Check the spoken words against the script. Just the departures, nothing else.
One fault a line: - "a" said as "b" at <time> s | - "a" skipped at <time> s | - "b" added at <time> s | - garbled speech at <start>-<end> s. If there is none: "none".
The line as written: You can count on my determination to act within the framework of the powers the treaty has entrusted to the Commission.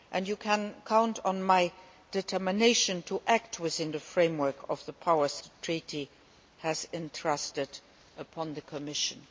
none